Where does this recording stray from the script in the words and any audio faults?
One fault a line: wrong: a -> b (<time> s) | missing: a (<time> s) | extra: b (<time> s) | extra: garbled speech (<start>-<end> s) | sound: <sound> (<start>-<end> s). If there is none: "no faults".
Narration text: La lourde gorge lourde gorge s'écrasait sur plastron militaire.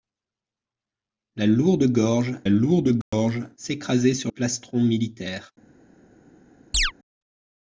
sound: dropout (3.0-3.1 s)
sound: chirp (6.7-6.9 s)